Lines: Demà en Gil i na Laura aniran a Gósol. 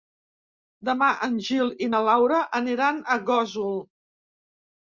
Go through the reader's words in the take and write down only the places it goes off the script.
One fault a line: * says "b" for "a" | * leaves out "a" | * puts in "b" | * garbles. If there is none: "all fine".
all fine